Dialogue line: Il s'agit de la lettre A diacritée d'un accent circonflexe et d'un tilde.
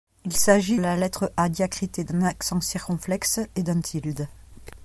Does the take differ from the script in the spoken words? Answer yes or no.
yes